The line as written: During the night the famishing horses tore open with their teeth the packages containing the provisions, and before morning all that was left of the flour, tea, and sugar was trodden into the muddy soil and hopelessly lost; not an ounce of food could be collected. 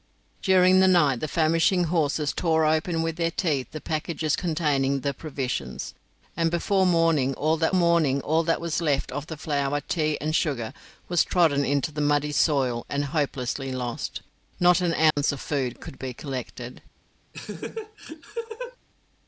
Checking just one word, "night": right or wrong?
right